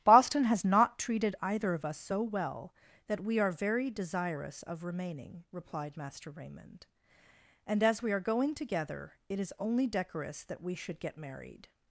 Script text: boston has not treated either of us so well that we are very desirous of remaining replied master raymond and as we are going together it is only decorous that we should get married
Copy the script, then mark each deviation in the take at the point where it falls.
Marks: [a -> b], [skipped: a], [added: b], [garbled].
boston has not treated either of us so well that we are very desirous of remaining replied master raymond and as we are going together it is only decorous that we should get married